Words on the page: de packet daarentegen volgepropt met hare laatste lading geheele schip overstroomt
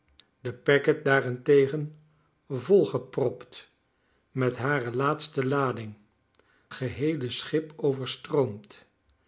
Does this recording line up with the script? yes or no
yes